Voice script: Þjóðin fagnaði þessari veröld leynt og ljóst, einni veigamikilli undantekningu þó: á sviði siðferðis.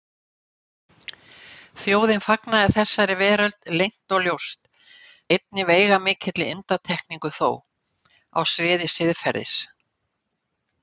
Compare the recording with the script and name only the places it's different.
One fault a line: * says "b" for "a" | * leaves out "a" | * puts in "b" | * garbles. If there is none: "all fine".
all fine